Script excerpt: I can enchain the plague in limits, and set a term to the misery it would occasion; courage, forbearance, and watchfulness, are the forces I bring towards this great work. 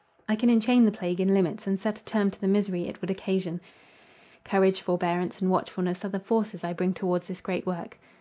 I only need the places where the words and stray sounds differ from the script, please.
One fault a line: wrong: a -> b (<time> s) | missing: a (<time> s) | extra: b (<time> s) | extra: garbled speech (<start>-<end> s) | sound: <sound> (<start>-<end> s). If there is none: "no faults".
no faults